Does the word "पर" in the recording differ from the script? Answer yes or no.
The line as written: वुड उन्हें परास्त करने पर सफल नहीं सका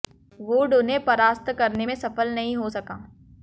yes